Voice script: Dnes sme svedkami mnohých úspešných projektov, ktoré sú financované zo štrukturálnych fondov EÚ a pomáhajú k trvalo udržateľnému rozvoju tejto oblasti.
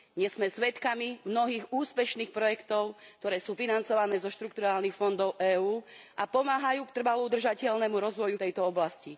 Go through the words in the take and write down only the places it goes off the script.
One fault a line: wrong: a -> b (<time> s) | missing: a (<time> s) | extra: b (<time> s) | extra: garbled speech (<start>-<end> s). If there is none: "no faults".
no faults